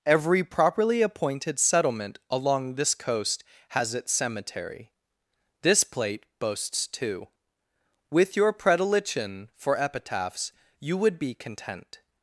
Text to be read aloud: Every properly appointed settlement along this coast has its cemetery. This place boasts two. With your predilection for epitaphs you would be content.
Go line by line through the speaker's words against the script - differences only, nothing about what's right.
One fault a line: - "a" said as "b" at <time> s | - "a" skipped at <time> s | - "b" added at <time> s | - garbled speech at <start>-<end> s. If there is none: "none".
- "place" said as "plate" at 5.8 s